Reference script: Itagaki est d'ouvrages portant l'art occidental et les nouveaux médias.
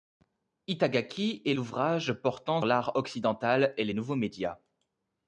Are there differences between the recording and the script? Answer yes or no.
no